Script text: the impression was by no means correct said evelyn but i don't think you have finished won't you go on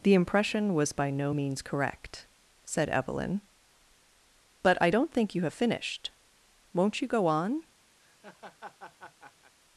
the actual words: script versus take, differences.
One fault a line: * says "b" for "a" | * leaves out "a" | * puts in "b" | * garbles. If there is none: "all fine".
all fine